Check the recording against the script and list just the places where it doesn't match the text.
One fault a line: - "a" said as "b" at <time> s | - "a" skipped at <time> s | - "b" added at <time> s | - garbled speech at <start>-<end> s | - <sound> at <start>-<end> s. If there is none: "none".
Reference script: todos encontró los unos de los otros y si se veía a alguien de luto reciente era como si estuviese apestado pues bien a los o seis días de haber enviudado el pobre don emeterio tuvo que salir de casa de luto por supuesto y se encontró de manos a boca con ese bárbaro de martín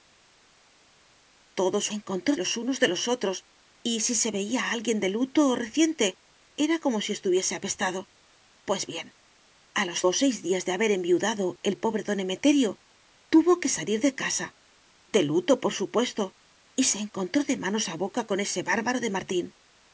none